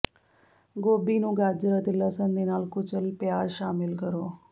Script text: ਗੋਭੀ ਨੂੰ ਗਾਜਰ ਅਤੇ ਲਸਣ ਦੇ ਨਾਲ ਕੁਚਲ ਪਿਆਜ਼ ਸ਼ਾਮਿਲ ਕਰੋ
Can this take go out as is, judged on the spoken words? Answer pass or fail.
pass